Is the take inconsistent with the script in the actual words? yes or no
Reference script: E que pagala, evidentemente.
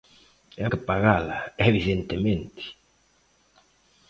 no